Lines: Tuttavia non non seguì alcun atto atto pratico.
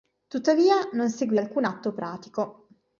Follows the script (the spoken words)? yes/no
no